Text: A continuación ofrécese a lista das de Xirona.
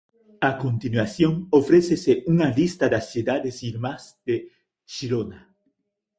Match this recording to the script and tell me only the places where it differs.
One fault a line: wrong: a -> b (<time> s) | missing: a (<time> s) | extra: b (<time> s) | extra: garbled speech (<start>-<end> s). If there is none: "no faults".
wrong: a -> unha (2.3 s)
extra: cidades irmás (3.1 s)